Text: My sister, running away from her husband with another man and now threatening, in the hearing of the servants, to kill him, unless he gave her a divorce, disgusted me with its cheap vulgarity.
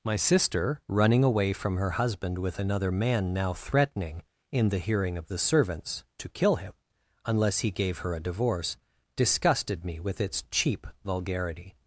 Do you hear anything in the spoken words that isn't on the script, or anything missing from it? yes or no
yes